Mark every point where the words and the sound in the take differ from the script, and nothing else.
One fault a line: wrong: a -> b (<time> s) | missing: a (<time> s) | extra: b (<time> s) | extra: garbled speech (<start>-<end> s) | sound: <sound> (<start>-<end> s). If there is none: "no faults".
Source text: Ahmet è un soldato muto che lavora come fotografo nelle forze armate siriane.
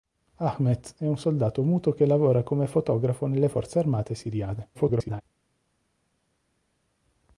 extra: garbled speech (4.7-5.2 s)